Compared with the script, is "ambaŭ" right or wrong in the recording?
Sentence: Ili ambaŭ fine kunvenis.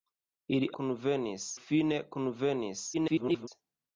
wrong